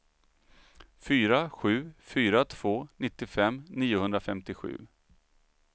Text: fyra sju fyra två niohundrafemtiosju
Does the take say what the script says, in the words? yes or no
no